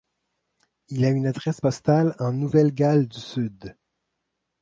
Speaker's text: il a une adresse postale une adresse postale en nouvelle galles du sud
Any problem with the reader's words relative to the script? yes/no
yes